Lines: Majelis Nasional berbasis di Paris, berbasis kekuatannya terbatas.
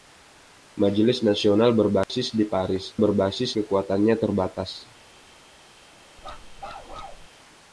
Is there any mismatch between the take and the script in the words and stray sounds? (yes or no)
yes